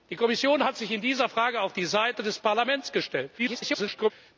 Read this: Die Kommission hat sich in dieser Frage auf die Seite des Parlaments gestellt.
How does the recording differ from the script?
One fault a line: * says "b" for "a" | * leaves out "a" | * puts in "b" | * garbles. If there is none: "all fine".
* garbles